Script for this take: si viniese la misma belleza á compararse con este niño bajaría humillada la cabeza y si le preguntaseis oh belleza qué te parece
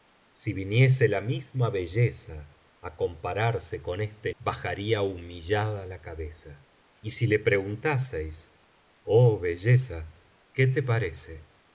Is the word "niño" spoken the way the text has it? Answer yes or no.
no